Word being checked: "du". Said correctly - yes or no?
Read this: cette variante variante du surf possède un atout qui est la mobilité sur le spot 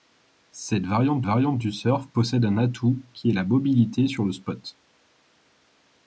yes